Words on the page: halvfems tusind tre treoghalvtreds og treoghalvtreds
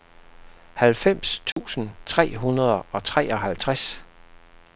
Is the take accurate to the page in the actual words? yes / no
no